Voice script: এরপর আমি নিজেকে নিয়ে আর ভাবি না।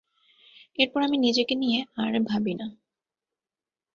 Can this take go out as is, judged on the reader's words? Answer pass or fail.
pass